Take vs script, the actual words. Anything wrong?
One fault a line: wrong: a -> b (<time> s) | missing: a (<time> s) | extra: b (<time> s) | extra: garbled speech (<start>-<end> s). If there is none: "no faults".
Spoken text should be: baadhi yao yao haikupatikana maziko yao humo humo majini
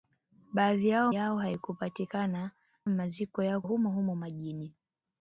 no faults